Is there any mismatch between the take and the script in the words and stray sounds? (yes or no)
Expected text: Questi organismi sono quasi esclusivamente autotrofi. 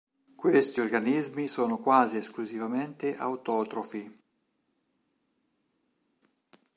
no